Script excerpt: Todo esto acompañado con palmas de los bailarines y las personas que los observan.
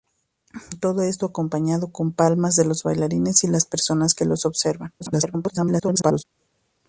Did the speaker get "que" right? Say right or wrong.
right